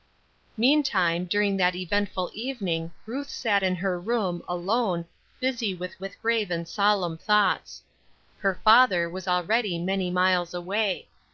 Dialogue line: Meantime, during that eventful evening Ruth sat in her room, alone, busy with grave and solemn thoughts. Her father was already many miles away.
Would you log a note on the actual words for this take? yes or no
yes